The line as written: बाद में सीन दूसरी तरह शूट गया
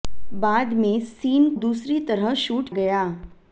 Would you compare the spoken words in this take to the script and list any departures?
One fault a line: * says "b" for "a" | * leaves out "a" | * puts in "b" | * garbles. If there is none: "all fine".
all fine